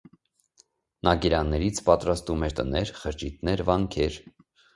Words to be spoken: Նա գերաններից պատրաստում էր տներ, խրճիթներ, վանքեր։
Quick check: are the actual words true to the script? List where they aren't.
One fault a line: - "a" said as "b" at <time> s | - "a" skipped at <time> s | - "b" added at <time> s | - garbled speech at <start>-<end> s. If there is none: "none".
none